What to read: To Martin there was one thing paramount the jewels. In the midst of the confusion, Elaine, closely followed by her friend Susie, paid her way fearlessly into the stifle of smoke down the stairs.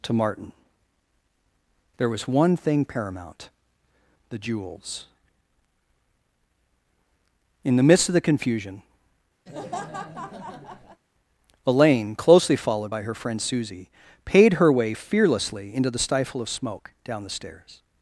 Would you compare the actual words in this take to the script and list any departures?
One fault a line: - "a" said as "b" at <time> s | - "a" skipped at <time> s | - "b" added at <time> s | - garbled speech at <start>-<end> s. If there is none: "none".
none